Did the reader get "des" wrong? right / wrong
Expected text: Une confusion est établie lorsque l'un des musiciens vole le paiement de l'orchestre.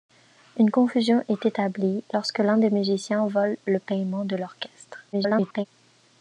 right